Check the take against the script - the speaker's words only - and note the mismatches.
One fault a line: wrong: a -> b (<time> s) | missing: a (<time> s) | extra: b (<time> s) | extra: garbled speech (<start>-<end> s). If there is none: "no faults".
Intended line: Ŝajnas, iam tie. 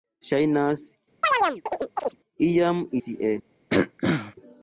no faults